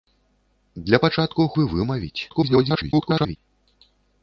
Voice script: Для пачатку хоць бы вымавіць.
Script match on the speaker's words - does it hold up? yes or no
no